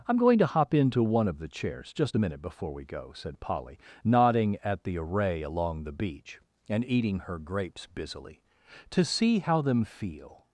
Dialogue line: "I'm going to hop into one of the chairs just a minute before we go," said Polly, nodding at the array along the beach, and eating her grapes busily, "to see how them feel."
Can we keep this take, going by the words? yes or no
yes